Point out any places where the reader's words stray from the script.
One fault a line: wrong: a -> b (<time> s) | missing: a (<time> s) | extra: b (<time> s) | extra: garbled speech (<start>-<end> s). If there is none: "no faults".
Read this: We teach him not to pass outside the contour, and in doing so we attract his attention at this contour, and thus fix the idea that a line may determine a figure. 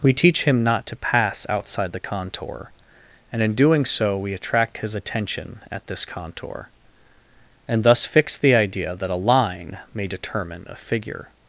no faults